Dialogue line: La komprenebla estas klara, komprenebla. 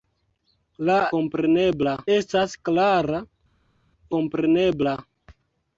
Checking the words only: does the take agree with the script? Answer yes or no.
yes